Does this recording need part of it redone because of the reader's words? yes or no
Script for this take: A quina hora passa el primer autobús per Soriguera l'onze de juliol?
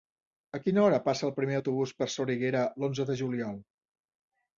no